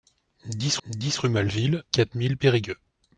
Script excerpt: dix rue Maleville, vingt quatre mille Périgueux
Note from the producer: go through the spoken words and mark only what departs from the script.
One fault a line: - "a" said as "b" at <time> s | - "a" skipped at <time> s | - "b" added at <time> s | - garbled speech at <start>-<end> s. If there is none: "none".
- "dix" added at 0.9 s
- "vingt" skipped at 1.8 s